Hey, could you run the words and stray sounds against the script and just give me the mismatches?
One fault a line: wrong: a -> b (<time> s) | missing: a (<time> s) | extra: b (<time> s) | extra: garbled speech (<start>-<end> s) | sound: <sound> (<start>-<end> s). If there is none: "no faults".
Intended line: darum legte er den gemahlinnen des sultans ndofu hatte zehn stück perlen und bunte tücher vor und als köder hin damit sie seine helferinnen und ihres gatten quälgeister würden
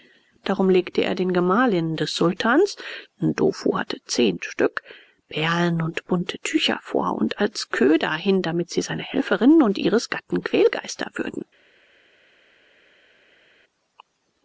no faults